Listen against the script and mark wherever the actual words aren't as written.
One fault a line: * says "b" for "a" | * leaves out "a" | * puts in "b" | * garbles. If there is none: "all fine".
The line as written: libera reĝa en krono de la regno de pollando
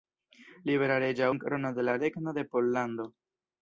all fine